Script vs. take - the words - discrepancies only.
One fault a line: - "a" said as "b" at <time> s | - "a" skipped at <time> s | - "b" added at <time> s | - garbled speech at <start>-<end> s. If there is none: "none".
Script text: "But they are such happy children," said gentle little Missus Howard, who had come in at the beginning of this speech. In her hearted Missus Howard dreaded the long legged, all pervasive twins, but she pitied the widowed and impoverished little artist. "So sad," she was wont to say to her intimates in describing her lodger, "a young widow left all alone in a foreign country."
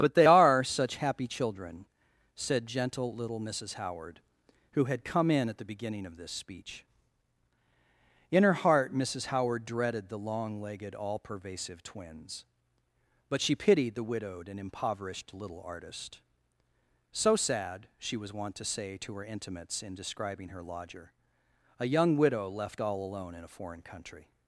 - "hearted" said as "heart" at 8.5 s